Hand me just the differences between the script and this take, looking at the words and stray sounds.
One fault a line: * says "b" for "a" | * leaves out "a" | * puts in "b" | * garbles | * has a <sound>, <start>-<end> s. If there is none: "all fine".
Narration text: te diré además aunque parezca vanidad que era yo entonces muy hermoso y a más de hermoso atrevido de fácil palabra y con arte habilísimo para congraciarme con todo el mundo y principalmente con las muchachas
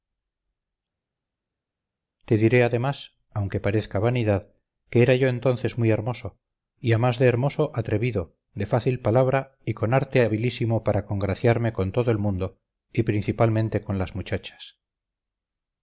all fine